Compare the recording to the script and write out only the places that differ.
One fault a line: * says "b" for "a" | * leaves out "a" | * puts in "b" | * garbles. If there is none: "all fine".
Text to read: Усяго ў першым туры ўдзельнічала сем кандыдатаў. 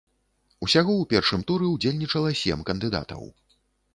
all fine